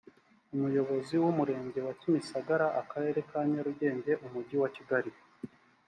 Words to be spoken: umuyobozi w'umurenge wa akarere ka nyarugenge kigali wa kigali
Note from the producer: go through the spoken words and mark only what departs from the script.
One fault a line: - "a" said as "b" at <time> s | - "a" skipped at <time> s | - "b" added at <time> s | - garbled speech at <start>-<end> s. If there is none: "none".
- "kimisagara" added at 2.0 s
- "kigali" said as "umujyi" at 4.2 s